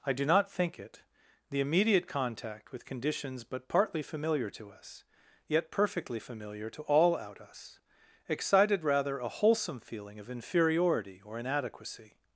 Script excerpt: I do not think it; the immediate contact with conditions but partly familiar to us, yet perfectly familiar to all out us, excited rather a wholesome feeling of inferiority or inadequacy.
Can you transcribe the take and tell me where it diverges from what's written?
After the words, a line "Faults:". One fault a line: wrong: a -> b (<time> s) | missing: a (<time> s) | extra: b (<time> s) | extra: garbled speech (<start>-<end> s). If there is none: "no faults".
I do not think it; the immediate contact with conditions but partly familiar to us, yet perfectly familiar to all out us, excited rather a wholesome feeling of inferiority or inadequacy.
Faults:
no faults